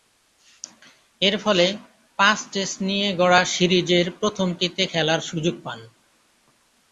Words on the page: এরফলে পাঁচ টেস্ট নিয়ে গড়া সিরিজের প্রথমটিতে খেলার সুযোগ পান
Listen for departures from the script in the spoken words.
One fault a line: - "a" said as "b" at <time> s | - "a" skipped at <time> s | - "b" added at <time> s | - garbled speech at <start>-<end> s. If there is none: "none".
none